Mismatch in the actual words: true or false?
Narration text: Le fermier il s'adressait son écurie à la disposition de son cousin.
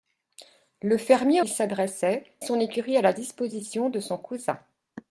false